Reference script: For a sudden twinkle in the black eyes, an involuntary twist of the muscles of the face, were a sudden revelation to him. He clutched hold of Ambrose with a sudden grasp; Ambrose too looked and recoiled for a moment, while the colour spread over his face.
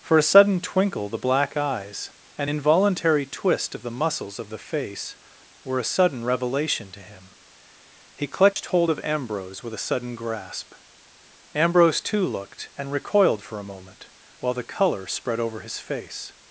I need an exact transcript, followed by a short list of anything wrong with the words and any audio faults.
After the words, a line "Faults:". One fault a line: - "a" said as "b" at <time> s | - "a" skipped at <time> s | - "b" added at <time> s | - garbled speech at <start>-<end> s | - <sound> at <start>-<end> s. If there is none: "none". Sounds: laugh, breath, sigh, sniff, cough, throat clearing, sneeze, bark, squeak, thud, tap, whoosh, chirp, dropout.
For a sudden twinkle the black eyes, an involuntary twist of the muscles of the face, were a sudden revelation to him. He clutched hold of Ambrose with a sudden grasp; Ambrose too looked and recoiled for a moment, while the colour spread over his face.
Faults:
- "in" skipped at 1.1 s
- dropout at 8.5-8.6 s